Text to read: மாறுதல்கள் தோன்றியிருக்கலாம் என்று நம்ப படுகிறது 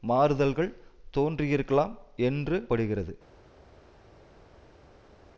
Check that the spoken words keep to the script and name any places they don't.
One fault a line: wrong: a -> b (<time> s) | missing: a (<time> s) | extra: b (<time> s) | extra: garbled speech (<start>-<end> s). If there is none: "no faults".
missing: நம்ப (2.6 s)